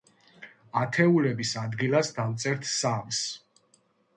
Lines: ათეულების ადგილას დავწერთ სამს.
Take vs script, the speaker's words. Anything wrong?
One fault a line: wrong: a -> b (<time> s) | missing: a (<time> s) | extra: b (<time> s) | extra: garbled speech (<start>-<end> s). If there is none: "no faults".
no faults